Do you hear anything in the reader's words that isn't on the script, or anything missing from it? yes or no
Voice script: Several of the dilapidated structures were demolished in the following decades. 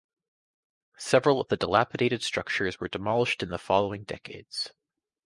no